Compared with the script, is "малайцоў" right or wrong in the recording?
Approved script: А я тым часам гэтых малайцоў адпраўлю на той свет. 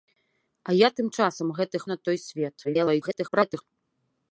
wrong